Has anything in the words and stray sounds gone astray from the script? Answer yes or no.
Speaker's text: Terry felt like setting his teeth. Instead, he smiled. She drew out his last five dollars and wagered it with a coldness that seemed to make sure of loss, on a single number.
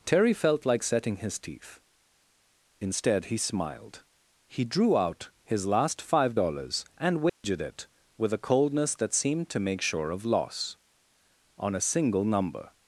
yes